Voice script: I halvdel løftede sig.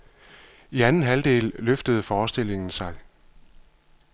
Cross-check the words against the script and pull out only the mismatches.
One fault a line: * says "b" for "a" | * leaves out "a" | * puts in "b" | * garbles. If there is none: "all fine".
* puts in "anden"
* puts in "forestillingen"